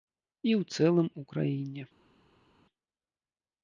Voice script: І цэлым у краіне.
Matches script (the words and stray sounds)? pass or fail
fail